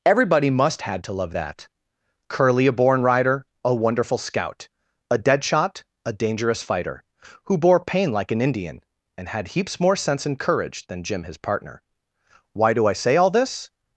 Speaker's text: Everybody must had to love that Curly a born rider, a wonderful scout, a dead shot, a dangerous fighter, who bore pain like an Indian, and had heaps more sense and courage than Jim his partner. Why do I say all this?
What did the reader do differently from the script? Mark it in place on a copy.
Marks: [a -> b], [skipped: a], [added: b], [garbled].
Everybody must had to love that Curly a born rider, a wonderful scout, a dead shot, a dangerous fighter, who bore pain like an Indian, and had heaps more sense and courage than Jim his partner. Why do I say all this?